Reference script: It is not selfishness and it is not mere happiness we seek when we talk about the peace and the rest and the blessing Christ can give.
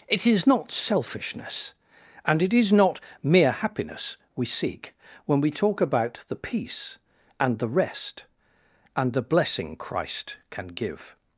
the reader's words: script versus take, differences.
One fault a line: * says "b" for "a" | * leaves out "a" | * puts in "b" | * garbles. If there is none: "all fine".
all fine